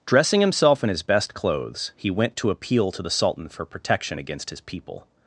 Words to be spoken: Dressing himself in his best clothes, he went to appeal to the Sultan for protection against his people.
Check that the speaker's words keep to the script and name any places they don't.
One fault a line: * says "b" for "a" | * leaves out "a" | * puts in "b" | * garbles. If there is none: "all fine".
all fine